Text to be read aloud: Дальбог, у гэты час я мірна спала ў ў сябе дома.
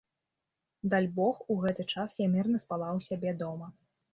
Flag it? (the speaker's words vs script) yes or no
yes